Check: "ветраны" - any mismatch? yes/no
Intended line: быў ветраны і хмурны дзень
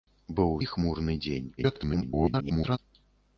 yes